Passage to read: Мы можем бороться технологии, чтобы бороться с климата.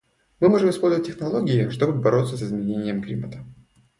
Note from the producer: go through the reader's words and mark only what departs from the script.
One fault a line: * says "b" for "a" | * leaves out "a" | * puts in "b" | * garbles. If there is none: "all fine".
* says "использовать" for "бороться"
* puts in "изменением"